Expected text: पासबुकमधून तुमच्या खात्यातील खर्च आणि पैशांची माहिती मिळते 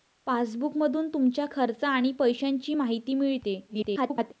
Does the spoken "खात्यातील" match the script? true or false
false